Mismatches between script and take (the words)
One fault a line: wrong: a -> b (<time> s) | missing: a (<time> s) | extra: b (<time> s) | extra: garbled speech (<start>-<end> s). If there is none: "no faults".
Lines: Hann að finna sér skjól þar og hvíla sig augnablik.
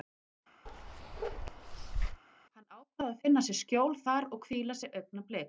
extra: ákvað (2.8 s)